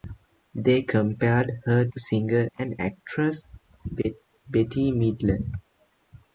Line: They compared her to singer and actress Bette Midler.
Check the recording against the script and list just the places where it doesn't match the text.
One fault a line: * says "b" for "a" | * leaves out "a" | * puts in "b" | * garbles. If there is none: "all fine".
all fine